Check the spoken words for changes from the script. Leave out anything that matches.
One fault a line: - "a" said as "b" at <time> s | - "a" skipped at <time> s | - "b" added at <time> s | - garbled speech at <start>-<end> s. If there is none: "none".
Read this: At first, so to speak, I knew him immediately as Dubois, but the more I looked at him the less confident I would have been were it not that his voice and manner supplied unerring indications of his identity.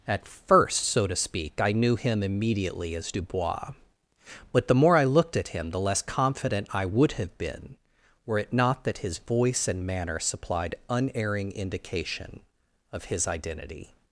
- "indications" said as "indication" at 11.5 s